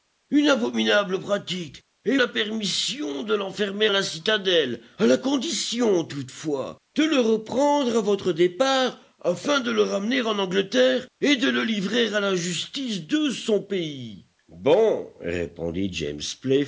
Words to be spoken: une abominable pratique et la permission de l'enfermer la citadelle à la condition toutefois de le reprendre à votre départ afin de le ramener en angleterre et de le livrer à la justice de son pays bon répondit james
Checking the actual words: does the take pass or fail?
pass